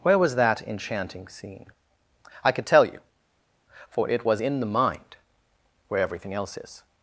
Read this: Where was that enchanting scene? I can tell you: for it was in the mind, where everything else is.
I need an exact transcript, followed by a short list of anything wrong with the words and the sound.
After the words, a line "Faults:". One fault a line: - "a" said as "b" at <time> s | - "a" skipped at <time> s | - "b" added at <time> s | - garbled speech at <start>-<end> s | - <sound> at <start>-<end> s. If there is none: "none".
Where was that enchanting scene? I could tell you: for it was in the mind, where everything else is.
Faults:
- "can" said as "could" at 2.5 s